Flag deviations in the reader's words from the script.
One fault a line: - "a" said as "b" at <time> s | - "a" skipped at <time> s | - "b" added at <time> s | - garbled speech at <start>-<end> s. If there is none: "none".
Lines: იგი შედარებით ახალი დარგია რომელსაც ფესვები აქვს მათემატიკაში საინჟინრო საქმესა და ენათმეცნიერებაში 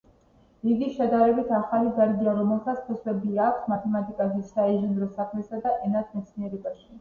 none